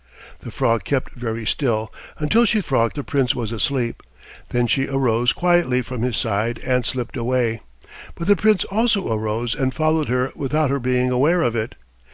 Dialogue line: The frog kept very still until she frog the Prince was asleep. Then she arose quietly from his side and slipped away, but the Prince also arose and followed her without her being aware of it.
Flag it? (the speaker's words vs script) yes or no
no